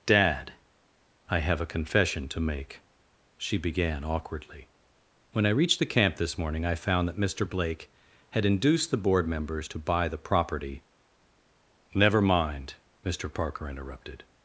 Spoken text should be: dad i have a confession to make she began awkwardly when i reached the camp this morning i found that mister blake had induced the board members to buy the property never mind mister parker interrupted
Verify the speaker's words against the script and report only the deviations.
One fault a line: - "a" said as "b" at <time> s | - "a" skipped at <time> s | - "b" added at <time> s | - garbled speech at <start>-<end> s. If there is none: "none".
none